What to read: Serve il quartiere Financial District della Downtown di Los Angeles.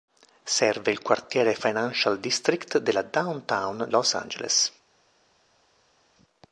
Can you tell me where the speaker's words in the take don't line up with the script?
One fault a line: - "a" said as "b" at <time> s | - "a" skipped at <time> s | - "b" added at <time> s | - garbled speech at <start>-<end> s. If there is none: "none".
- "di" skipped at 3.9 s